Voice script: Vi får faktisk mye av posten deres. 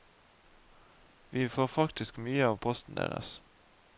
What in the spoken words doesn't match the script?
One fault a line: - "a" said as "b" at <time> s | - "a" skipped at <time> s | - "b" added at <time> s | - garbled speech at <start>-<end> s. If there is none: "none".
none